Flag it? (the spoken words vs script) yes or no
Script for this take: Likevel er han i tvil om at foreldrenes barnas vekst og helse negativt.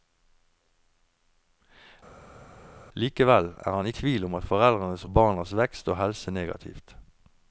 no